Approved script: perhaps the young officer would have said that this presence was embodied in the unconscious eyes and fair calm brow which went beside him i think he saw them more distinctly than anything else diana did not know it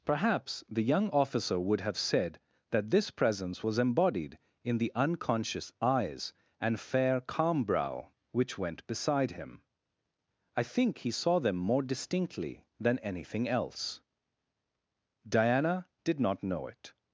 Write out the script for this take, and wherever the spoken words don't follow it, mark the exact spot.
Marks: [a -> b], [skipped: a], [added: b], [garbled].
perhaps the young officer would have said that this presence was embodied in the unconscious eyes and fair calm brow which went beside him i think he saw them more distinctly than anything else diana did not know it